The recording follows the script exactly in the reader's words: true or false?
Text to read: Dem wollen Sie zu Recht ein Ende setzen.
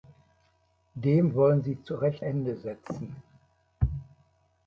false